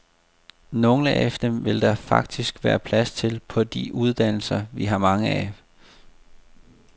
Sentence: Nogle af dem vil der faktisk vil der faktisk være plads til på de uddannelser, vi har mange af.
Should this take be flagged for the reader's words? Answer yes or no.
yes